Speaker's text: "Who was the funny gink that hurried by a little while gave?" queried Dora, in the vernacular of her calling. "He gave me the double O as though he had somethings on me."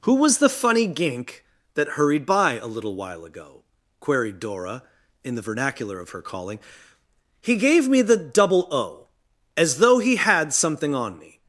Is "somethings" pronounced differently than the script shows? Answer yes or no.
yes